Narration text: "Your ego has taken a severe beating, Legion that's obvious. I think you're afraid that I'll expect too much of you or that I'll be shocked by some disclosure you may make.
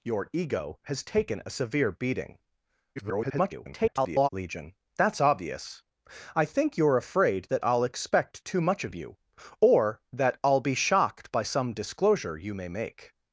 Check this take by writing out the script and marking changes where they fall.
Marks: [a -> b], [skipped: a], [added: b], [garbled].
"Your ego has taken a severe beating, [garbled] Legion that's obvious. I think you're afraid that I'll expect too much of you or that I'll be shocked by some disclosure you may make.